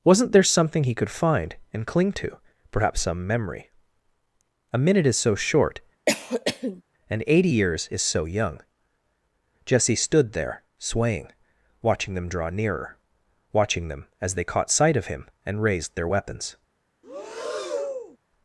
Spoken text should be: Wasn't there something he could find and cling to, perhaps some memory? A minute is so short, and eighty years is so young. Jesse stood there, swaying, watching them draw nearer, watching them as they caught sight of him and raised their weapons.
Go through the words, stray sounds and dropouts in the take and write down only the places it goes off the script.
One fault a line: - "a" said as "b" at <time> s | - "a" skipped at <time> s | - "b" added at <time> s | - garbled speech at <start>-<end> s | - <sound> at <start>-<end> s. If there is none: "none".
- cough at 6.1-6.8 s
- breath at 17.0-18.2 s